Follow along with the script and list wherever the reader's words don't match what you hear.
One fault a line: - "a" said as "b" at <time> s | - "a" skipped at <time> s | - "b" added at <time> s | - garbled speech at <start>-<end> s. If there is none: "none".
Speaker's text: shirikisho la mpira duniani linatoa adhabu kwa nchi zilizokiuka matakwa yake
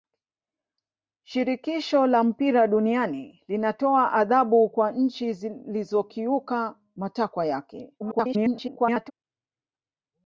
- garbled speech at 8.0-9.1 s